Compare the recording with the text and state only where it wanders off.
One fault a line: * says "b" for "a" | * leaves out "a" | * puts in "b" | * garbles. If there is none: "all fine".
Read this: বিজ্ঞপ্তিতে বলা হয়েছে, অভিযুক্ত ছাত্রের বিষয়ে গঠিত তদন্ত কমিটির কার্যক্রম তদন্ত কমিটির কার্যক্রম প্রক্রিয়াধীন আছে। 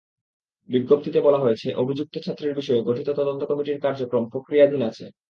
* leaves out "তদন্ত কমিটির কার্যক্রম"